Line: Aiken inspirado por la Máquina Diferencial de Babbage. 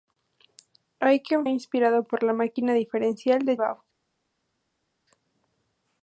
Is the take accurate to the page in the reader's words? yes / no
yes